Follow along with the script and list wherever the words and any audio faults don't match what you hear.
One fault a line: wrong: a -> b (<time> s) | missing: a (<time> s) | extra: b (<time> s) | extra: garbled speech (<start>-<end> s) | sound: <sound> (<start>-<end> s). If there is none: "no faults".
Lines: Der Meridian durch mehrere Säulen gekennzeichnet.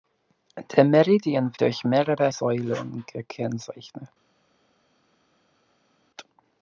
no faults